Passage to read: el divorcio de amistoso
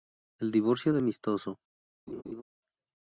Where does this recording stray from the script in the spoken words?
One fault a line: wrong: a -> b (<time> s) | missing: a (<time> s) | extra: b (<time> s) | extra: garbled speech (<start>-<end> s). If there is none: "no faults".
no faults